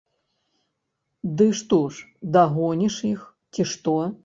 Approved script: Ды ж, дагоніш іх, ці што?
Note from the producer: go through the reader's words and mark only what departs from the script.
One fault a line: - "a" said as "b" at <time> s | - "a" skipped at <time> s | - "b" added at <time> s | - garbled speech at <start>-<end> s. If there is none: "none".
- "што" added at 1.6 s